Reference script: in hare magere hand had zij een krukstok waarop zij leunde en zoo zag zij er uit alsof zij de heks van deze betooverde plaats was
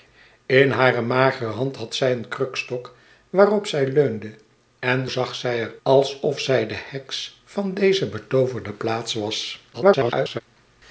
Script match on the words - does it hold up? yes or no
no